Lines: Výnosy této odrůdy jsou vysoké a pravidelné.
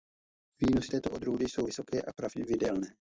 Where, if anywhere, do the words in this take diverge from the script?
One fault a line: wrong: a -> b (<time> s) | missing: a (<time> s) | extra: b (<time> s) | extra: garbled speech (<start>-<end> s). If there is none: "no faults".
no faults